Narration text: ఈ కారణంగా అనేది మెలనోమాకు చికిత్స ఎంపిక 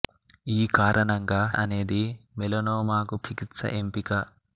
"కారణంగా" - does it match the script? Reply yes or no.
yes